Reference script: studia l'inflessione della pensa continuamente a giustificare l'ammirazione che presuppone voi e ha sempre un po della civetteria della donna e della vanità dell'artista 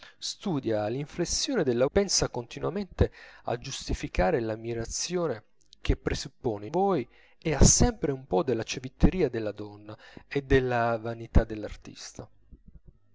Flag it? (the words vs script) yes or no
no